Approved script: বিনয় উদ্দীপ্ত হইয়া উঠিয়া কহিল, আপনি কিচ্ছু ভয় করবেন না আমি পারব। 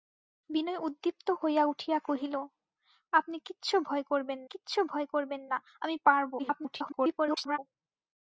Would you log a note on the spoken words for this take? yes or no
yes